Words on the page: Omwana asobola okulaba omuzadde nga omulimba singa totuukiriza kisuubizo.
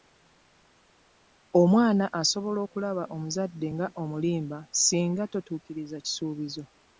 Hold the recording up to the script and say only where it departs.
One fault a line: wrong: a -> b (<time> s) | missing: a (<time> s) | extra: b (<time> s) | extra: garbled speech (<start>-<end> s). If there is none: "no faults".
no faults